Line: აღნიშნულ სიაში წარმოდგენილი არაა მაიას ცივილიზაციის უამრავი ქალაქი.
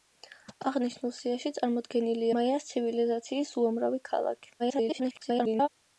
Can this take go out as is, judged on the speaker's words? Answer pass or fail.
fail